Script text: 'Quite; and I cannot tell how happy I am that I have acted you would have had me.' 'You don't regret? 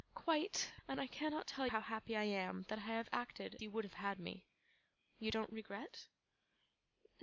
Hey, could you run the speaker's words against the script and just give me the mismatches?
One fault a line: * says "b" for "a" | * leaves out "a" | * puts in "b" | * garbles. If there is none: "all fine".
all fine